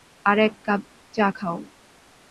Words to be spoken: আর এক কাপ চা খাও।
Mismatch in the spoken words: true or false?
false